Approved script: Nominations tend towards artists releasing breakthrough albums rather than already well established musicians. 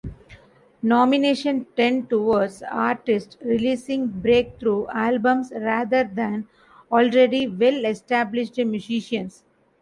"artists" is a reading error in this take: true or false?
false